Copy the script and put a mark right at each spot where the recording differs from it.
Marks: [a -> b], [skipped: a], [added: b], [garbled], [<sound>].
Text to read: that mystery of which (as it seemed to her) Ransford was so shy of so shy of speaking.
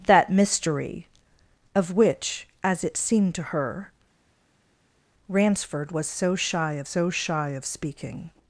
that mystery of which (as it seemed to her) Ransford was so shy of so shy of speaking.